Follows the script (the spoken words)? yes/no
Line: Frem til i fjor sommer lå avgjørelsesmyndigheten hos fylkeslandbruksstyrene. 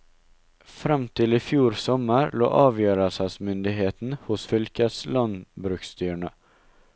yes